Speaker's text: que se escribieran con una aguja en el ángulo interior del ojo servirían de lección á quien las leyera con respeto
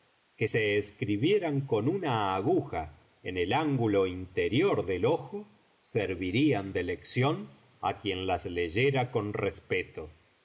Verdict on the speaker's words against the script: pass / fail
pass